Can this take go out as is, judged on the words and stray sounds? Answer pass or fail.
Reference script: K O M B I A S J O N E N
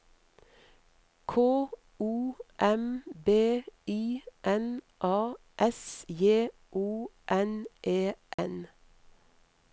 fail